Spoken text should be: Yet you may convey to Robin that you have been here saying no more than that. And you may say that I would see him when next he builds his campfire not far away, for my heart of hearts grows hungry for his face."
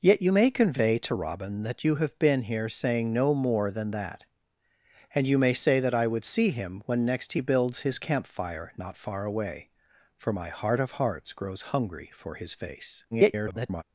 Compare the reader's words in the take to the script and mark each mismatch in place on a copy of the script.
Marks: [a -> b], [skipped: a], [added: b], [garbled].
Yet you may convey to Robin that you have been here saying no more than that. And you may say that I would see him when next he builds his campfire not far away, for my heart of hearts grows hungry for his face." [garbled]